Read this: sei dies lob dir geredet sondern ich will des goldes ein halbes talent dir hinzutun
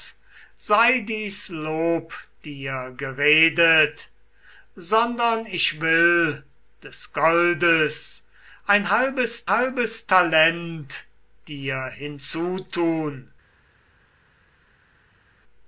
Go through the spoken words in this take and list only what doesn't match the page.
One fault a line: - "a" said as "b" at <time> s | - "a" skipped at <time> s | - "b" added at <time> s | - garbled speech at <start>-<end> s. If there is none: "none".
- "halbes" added at 9.5 s